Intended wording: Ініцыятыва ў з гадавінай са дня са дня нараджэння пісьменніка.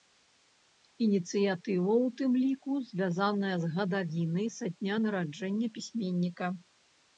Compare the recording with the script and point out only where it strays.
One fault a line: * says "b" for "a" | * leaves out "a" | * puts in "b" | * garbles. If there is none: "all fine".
* puts in "тым ліку звязаная"
* leaves out "са дня"